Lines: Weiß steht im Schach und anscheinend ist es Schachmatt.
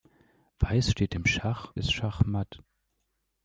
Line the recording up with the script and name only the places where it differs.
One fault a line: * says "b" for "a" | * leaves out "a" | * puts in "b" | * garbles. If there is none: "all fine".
* leaves out "und anscheinend ist"